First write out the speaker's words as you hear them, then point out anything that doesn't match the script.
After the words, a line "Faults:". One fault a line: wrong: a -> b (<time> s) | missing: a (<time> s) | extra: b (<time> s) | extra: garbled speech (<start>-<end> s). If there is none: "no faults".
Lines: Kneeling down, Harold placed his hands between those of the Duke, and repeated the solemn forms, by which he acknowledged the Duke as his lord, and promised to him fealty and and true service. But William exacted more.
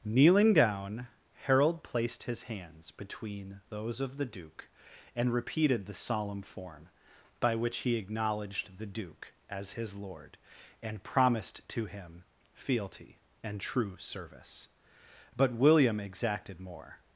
Kneeling down, Harold placed his hands between those of the Duke, and repeated the solemn form, by which he acknowledged the Duke as his lord, and promised to him fealty and true service. But William exacted more.
Faults:
wrong: forms -> form (6.4 s)
missing: and (13.6 s)